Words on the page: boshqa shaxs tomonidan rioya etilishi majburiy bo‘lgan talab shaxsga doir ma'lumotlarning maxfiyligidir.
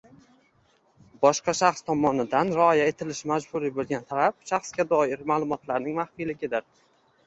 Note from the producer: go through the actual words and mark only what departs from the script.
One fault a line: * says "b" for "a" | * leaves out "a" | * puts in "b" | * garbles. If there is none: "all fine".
all fine